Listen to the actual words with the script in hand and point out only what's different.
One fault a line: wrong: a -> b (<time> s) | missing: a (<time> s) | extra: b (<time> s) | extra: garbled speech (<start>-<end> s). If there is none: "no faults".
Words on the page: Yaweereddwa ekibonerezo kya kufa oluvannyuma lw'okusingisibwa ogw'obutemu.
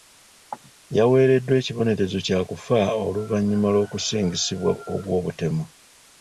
no faults